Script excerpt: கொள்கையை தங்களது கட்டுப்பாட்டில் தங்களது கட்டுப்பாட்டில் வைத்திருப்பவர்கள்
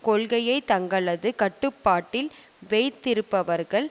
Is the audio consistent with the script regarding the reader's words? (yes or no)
no